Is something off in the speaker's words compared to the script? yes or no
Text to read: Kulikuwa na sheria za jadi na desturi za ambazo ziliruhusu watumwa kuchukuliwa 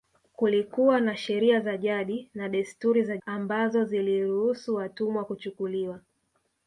no